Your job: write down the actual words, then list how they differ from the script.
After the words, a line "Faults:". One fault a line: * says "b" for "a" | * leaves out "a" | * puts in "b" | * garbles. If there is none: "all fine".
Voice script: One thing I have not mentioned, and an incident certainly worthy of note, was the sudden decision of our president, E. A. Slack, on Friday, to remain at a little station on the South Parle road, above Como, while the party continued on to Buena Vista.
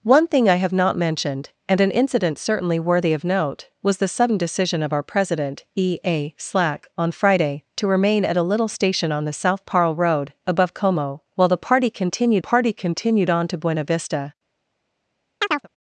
One thing I have not mentioned, and an incident certainly worthy of note, was the sudden decision of our president, E. A. Slack, on Friday, to remain at a little station on the South Parle road, above Como, while the party continued party continued on to Buena Vista.
Faults:
* puts in "party continued"